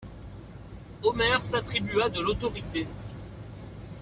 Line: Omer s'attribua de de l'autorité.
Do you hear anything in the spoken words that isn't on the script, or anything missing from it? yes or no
yes